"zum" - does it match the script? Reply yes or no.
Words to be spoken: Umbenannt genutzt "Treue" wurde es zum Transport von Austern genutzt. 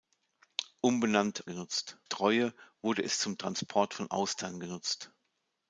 yes